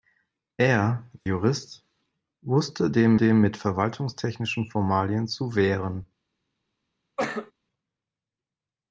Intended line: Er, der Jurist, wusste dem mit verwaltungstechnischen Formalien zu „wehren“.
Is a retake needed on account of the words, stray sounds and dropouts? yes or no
yes